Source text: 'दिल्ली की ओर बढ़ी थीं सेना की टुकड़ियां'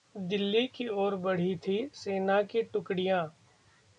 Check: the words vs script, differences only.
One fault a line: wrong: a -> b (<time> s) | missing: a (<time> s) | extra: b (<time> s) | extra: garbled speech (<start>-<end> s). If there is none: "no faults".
no faults